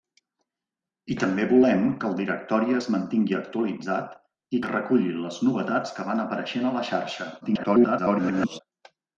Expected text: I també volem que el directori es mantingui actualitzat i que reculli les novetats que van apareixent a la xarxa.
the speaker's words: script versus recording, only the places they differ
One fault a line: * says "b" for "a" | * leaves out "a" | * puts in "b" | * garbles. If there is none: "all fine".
* garbles